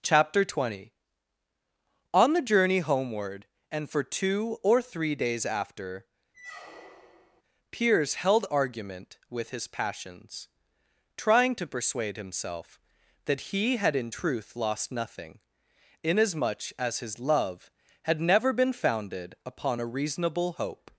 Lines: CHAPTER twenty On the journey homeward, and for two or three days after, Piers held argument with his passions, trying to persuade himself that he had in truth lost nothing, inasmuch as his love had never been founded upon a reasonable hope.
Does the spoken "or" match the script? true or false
true